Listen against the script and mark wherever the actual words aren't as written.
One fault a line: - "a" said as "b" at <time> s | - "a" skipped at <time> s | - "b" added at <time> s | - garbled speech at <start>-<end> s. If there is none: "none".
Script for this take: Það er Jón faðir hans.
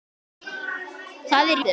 - "Jón faðir" skipped at 1.6 s